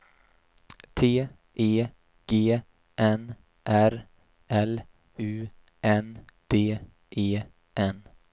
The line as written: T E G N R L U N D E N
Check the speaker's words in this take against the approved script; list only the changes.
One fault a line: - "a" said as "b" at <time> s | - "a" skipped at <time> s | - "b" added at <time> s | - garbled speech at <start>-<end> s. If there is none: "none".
none